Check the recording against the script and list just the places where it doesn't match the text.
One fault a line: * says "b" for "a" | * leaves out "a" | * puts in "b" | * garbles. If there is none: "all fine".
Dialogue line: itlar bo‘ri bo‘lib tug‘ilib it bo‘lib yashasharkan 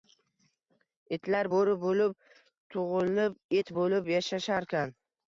all fine